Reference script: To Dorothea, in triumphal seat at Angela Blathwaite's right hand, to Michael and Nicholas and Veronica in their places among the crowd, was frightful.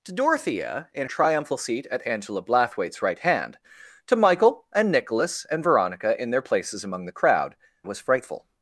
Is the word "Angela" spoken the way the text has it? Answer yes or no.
yes